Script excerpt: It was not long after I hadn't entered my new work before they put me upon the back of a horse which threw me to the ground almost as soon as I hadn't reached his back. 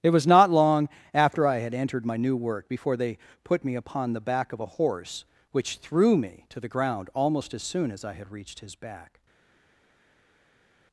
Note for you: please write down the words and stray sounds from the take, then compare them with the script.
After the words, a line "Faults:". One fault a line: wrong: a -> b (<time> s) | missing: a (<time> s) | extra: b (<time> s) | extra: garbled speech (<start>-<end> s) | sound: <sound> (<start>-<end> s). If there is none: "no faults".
It was not long after I had entered my new work before they put me upon the back of a horse which threw me to the ground almost as soon as I had reached his back.
Faults:
wrong: hadn't -> had (1.6 s)
wrong: hadn't -> had (8.1 s)